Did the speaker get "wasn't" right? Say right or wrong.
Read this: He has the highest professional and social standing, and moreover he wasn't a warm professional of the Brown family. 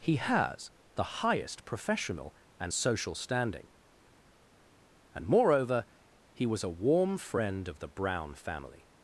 wrong